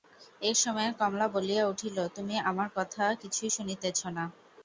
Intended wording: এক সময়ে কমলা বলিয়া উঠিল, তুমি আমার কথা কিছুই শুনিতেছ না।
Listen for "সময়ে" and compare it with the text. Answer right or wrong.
right